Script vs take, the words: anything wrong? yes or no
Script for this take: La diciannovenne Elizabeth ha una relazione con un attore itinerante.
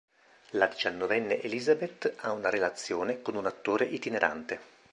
no